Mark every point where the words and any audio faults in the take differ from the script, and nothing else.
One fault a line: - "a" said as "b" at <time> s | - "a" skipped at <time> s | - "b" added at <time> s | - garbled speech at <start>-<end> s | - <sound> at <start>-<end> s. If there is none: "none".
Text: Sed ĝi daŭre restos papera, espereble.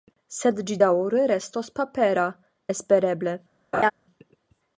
- laugh at 3.7-3.9 s